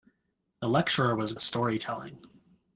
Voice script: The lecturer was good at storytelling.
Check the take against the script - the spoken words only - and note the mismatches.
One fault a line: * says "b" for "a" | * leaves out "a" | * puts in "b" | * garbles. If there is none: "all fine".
* leaves out "good"